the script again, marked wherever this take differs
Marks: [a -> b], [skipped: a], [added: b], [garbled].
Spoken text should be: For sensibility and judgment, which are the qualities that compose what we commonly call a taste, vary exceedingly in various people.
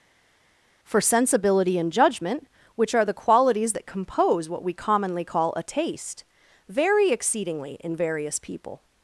For sensibility and judgment, which are the qualities that compose what we commonly call a taste, vary exceedingly in various people.